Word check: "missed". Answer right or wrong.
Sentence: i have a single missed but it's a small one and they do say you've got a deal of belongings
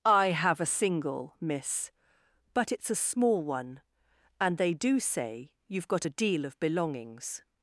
wrong